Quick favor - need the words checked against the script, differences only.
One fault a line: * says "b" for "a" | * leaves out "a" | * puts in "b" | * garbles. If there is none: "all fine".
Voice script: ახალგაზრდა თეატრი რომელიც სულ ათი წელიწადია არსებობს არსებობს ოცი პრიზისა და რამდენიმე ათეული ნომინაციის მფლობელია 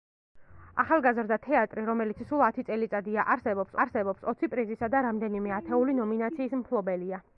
all fine